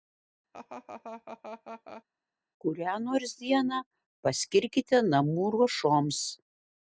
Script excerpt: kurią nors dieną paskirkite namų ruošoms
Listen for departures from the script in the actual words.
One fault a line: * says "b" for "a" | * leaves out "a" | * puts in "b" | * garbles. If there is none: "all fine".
all fine